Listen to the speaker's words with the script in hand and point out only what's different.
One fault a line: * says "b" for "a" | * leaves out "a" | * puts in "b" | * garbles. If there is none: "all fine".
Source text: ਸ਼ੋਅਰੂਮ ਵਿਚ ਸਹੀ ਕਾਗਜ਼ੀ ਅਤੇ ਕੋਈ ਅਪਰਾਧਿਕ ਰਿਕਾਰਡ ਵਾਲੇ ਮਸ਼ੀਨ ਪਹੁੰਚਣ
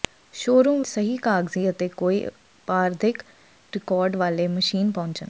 * leaves out "ਵਿਚ"